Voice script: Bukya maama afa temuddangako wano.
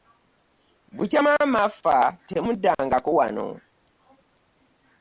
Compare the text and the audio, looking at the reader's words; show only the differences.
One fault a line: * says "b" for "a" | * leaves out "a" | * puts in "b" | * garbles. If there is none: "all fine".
all fine